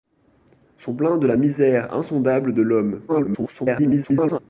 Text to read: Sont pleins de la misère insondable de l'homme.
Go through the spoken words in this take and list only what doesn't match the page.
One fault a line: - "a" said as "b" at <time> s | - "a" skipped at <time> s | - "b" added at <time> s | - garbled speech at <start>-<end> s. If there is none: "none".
- garbled speech at 3.1-4.4 s